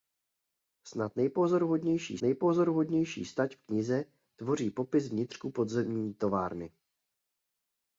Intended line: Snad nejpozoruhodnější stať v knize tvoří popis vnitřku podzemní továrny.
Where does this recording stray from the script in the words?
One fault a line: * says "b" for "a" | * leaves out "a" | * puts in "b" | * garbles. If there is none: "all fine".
* puts in "nejpozoruhodnější"